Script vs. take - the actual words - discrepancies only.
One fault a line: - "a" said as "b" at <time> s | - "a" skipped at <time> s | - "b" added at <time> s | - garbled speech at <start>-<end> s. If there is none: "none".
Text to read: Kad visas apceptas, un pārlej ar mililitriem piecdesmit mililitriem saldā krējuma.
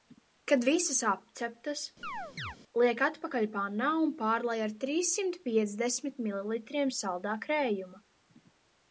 - "liek atpakaļ pannā" added at 2.8 s
- "mililitriem" said as "trīssimt" at 4.8 s